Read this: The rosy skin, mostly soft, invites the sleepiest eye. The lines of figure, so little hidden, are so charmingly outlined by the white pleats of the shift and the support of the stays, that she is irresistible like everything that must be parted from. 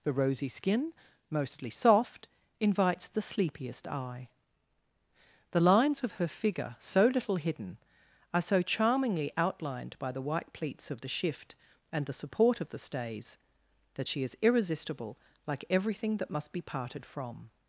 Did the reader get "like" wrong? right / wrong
right